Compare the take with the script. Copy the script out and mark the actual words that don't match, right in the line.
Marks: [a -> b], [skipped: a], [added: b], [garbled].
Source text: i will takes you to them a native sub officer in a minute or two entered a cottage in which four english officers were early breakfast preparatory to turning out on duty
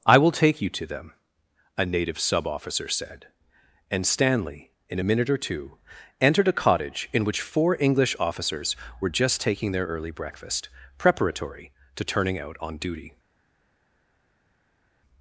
i will [takes -> take] you to them a native sub officer [added: said and stanley] in a minute or two entered a cottage in which four english officers were [added: just taking their] early breakfast preparatory to turning out on duty